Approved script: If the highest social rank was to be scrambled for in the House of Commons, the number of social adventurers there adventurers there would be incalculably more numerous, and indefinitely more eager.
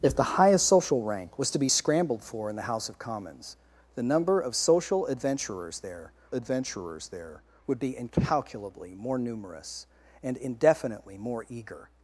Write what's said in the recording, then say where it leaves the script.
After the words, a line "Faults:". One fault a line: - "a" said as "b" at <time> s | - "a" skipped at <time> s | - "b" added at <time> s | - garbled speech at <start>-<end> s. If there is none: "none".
If the highest social rank was to be scrambled for in the House of Commons, the number of social adventurers there adventurers there would be incalculably more numerous, and indefinitely more eager.
Faults:
none